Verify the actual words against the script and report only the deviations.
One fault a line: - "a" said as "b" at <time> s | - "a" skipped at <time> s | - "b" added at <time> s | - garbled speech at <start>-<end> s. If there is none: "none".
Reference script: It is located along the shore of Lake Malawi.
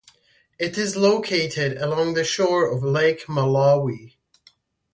none